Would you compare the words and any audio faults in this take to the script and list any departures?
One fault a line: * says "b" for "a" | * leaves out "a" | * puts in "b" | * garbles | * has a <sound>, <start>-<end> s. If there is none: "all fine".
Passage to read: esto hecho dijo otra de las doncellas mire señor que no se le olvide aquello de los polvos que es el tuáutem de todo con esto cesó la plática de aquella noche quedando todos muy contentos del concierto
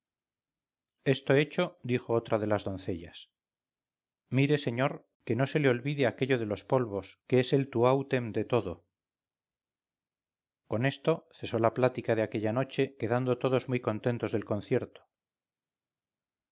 all fine